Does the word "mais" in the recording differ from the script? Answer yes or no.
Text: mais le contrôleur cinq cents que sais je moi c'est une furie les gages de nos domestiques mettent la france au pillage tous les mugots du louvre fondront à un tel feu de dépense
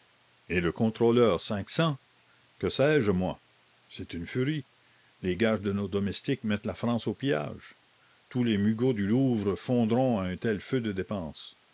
yes